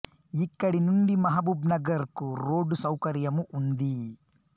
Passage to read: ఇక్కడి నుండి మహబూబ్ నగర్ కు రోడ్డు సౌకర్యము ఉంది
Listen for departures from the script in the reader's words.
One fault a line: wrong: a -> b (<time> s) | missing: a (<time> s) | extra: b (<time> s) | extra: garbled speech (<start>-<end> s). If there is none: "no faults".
no faults